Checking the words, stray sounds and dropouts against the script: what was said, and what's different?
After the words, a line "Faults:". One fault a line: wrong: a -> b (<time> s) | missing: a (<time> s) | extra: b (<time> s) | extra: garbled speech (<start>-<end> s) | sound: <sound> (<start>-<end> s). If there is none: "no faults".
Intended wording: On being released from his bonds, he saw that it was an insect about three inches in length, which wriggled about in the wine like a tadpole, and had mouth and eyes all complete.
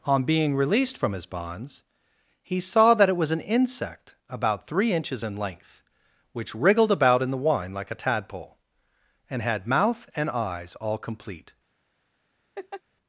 On being released from his bonds, he saw that it was an insect about three inches in length, which wriggled about in the wine like a tadpole, and had mouth and eyes all complete.
Faults:
sound: laugh (12.6-12.8 s)